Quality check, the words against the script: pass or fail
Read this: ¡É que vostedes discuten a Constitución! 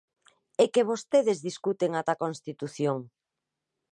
fail